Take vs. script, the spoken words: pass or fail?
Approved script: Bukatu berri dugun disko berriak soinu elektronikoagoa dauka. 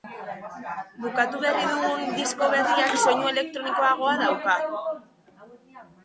pass